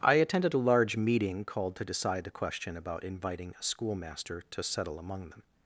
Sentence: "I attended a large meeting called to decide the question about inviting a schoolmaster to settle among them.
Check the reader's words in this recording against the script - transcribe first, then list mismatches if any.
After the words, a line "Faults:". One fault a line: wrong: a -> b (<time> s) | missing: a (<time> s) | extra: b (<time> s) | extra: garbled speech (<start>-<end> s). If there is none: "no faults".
"I attended a large meeting called to decide the question about inviting a schoolmaster to settle among them.
Faults:
no faults